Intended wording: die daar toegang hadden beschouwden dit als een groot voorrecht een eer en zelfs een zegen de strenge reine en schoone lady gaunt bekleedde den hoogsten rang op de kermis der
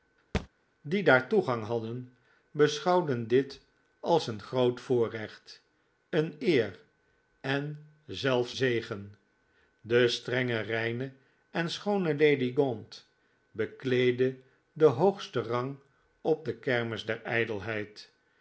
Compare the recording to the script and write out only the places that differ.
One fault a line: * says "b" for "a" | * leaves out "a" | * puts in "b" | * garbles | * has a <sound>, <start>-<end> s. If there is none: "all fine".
* has a thud, 0.3-0.5 s
* leaves out "een"